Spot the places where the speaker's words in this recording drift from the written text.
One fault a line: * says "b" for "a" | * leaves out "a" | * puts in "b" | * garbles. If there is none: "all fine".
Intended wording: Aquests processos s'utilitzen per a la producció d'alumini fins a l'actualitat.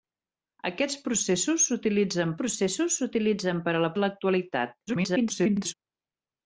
* puts in "processos s'utilitzen"
* leaves out "producció d'alumini fins"
* garbles